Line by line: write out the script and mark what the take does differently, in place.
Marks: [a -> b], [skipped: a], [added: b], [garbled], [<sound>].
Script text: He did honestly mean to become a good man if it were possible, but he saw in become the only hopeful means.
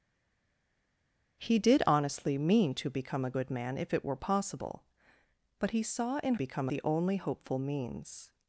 He did honestly mean to become a good man if it were possible, but he saw in become the only hopeful means.